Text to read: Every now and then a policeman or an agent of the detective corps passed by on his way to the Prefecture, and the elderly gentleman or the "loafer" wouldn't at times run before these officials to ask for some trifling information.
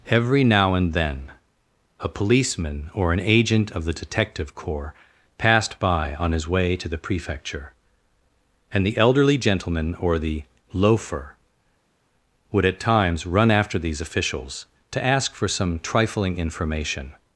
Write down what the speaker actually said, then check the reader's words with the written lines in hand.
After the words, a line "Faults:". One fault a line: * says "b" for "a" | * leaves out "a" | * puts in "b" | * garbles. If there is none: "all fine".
Every now and then a policeman or an agent of the detective corps passed by on his way to the Prefecture, and the elderly gentleman or the "loafer" would at times run after these officials to ask for some trifling information.
Faults:
* says "would" for "wouldn't"
* says "after" for "before"